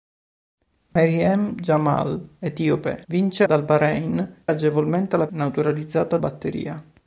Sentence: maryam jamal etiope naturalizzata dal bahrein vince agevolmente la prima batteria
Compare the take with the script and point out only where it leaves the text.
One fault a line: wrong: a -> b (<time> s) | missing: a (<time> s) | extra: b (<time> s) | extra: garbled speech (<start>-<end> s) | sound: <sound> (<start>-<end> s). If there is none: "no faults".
sound: dropout (0.9-1.0 s)
wrong: naturalizzata -> vince (3.0 s)
missing: vince (4.4 s)
wrong: prima -> naturalizzata (5.3 s)